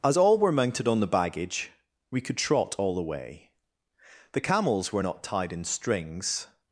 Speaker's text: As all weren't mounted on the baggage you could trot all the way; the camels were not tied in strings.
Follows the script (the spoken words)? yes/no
no